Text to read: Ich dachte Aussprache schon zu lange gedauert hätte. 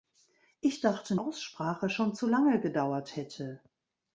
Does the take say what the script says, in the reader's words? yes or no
yes